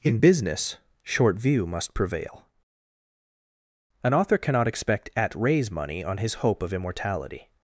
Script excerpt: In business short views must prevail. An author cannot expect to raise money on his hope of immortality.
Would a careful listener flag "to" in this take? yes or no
yes